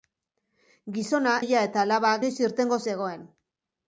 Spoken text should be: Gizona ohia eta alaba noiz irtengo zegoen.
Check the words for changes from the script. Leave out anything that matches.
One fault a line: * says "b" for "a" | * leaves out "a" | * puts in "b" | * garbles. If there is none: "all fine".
all fine